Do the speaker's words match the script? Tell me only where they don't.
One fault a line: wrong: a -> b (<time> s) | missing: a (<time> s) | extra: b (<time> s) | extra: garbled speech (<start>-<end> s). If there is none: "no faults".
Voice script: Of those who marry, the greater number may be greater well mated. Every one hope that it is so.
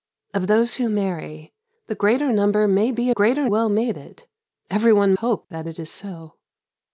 no faults